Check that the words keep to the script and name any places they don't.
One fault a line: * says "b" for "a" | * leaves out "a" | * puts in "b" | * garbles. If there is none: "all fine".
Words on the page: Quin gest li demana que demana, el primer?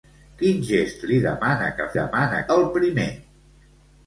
all fine